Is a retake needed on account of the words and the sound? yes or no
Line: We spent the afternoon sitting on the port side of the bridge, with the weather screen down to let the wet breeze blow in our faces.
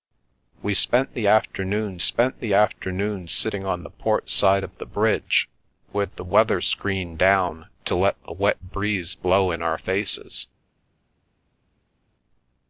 yes